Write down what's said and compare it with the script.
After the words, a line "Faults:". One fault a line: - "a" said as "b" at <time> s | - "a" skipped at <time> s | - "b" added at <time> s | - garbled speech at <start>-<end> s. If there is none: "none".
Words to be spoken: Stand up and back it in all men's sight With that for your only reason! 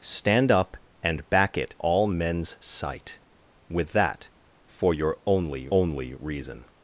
Stand up and back it all men's sight With that for your only only reason!
Faults:
- "in" skipped at 1.8 s
- "only" added at 5.7 s